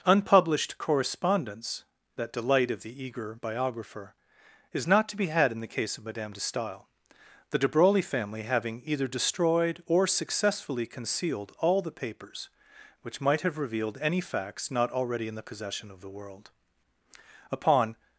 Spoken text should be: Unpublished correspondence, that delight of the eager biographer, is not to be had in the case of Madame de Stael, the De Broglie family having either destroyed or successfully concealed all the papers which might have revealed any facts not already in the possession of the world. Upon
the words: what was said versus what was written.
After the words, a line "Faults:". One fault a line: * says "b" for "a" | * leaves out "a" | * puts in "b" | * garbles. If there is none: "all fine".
Unpublished correspondence, that delight of the eager biographer, is not to be had in the case of Madame de Stael, the De Broglie family having either destroyed or successfully concealed all the papers which might have revealed any facts not already in the possession of the world. Upon
Faults:
all fine